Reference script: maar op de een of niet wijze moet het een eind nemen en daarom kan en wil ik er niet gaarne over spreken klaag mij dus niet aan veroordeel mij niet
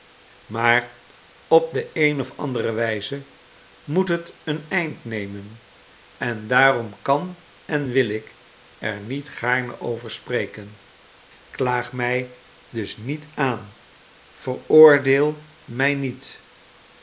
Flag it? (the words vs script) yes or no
yes